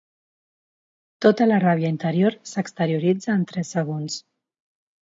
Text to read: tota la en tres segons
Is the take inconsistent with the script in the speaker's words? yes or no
yes